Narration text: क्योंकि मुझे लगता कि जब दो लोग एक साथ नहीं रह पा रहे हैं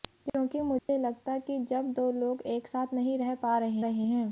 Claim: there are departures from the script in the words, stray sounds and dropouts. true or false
true